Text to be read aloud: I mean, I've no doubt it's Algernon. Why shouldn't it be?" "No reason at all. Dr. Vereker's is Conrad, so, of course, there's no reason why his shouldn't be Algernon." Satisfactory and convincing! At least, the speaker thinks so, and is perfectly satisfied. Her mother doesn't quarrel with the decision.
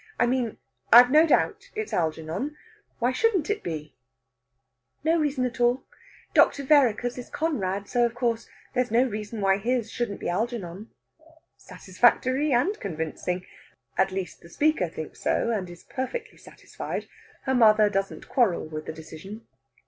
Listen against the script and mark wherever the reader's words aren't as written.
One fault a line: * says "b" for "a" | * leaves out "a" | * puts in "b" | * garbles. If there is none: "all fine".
all fine